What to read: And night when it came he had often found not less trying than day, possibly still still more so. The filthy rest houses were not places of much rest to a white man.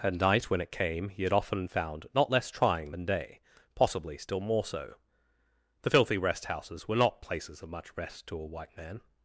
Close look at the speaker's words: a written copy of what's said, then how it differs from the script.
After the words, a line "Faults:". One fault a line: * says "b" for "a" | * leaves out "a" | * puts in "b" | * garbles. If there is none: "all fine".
And night when it came he had often found not less trying than day, possibly still more so. The filthy rest houses were not places of much rest to a white man.
Faults:
* leaves out "still"